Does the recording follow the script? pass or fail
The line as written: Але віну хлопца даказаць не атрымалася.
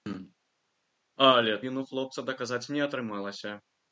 pass